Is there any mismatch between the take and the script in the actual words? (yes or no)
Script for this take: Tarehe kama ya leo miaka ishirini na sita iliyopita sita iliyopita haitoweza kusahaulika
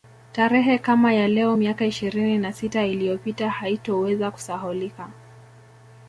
yes